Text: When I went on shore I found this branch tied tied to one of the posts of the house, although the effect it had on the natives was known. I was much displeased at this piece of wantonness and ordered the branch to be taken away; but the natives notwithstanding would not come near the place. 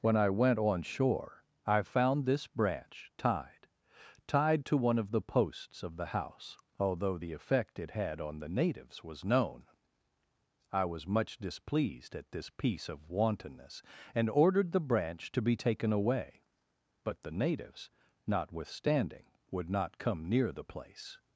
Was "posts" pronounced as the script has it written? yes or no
yes